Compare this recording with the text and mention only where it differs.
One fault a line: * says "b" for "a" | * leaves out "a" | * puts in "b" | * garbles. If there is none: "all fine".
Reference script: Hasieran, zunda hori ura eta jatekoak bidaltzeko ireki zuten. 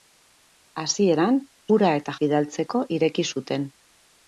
* leaves out "zunda hori"
* leaves out "jatekoak"